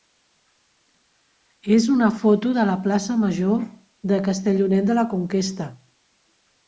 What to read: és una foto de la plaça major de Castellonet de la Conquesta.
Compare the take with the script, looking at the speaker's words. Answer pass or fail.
pass